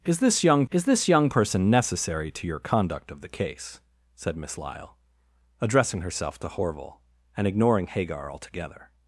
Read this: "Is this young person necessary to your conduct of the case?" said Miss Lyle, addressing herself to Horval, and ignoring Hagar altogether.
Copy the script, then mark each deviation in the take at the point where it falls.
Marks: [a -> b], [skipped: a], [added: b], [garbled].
"Is this young [added: is this young] person necessary to your conduct of the case?" said Miss Lyle, addressing herself to Horval, and ignoring Hagar altogether.